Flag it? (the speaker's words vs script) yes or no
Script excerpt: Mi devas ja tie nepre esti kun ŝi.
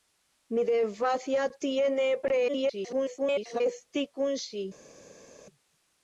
yes